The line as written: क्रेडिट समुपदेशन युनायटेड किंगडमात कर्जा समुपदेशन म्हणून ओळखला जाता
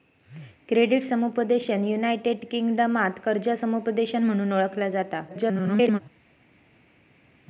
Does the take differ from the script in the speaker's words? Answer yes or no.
yes